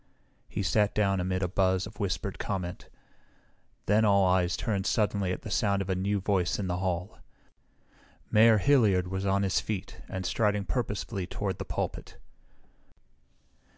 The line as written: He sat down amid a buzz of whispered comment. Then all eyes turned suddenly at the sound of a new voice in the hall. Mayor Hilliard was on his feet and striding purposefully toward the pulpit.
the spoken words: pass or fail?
pass